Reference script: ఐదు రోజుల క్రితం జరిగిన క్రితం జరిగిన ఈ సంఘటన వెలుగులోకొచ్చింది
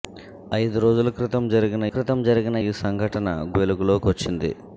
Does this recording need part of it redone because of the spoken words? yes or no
no